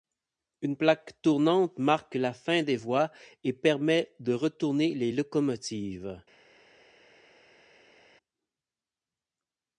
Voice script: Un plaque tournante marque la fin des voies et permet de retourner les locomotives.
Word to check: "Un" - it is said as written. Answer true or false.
false